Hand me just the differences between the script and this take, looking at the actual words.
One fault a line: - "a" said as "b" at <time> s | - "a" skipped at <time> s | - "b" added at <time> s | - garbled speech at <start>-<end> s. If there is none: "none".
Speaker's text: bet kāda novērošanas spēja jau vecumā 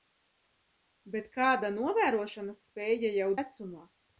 none